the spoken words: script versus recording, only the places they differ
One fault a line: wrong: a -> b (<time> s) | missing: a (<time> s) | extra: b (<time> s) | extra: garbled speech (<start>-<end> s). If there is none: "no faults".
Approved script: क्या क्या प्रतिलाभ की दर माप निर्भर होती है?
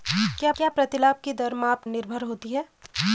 no faults